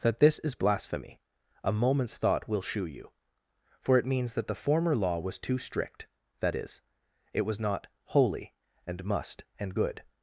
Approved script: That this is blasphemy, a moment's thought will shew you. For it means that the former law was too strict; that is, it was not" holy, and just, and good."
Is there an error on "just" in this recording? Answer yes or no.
yes